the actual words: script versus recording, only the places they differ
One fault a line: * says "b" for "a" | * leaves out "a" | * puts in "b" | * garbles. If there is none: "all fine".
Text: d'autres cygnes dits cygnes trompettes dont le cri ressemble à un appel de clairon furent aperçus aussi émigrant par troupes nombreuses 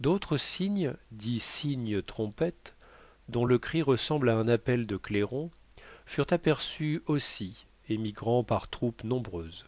all fine